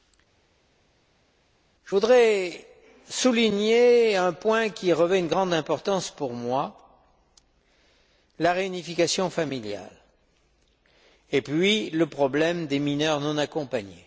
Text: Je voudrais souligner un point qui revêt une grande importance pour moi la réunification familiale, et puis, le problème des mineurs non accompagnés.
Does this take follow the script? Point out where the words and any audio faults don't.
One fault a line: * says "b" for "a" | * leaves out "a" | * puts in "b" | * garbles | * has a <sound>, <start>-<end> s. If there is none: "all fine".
all fine